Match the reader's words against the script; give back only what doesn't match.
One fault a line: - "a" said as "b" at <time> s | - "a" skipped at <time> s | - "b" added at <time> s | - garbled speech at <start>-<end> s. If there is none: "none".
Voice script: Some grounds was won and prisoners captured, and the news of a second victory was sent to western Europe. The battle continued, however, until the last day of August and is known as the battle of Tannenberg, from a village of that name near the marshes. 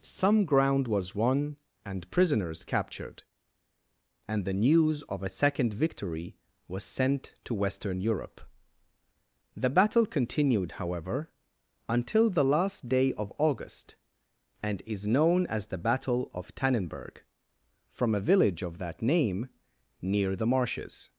- "grounds" said as "ground" at 0.5 s